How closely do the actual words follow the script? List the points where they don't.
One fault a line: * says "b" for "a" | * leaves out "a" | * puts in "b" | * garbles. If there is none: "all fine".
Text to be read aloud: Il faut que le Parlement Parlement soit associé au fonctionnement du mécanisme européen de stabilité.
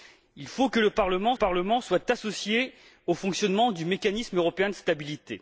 all fine